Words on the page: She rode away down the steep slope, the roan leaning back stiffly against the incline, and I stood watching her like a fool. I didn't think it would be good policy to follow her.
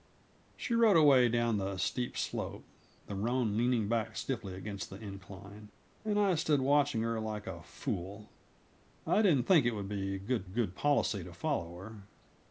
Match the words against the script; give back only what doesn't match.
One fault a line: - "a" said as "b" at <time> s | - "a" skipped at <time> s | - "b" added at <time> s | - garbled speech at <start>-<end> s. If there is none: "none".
- "good" added at 10.4 s